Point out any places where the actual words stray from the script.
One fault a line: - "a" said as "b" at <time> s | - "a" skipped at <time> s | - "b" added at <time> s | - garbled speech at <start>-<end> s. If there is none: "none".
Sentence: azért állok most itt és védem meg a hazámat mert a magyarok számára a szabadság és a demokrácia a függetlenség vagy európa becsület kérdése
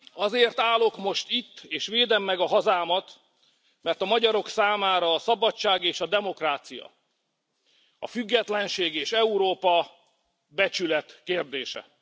- "vagy" said as "és" at 8.9 s